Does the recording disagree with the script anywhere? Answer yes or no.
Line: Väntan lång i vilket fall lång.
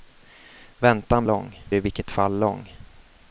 no